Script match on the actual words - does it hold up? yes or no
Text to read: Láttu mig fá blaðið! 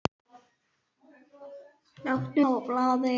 no